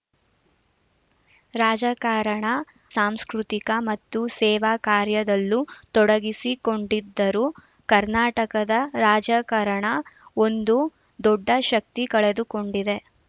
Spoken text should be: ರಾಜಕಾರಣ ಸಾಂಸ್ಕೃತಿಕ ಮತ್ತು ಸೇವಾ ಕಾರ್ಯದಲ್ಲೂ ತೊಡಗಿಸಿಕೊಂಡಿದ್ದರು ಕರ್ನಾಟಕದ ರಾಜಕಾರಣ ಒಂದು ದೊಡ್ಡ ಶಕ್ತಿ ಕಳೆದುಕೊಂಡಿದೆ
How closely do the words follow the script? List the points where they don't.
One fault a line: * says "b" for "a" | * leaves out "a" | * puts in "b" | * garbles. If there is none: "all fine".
all fine